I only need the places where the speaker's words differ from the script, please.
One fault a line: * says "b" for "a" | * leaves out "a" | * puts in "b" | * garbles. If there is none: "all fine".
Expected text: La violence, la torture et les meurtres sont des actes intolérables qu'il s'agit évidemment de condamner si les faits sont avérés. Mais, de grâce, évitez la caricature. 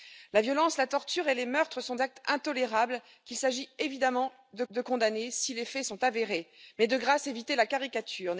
* leaves out "des"
* puts in "de"